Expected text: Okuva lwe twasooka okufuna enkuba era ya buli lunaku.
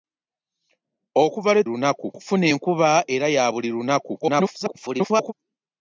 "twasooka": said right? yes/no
no